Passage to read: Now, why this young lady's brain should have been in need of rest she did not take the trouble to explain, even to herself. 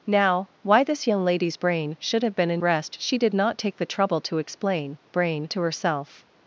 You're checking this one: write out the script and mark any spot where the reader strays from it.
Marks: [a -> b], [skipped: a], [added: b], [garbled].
Now, why this young lady's brain should have been in [skipped: need of] rest she did not take the trouble to explain, [even -> brain] to herself.